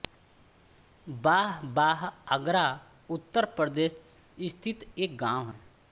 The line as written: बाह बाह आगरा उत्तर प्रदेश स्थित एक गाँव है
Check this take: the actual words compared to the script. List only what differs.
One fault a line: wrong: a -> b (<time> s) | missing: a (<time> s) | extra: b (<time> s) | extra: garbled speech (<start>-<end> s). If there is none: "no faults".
no faults